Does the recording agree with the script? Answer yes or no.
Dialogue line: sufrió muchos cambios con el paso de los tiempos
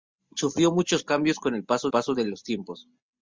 no